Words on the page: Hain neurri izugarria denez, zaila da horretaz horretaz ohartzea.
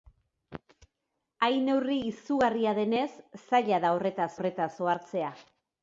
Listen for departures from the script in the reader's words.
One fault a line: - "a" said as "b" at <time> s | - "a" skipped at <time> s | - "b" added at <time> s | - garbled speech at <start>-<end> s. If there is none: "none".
none